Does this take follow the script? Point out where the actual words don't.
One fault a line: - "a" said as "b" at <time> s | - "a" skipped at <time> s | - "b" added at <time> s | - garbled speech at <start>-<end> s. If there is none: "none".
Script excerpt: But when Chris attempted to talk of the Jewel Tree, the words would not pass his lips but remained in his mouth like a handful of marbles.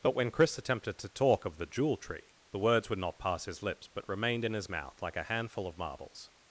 none